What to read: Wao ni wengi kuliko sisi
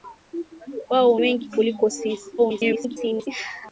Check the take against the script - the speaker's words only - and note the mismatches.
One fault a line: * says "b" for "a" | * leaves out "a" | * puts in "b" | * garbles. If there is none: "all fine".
* leaves out "ni"
* garbles